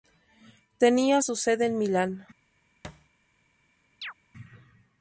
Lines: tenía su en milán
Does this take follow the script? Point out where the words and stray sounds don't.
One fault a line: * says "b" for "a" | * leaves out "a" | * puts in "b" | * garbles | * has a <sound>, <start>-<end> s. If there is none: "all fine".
* puts in "sede"
* has a thud, 2.8-3.1 s
* has a chirp, 4.0-4.1 s